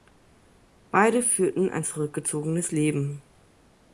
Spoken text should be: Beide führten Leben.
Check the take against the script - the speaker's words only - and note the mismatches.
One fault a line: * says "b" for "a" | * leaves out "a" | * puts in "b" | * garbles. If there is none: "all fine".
* puts in "ein zurückgezogenes"